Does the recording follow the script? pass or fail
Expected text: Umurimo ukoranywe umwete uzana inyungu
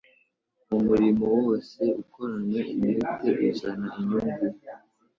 fail